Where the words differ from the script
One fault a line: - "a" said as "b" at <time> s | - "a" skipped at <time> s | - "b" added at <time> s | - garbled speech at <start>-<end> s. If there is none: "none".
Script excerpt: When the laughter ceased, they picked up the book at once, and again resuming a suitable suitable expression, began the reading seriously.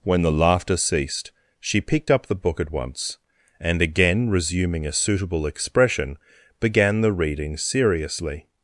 - "they" said as "she" at 1.6 s
- "suitable" skipped at 5.4 s